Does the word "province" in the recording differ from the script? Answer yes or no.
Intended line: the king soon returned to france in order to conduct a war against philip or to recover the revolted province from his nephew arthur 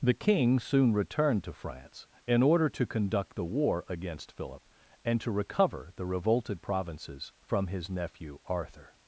yes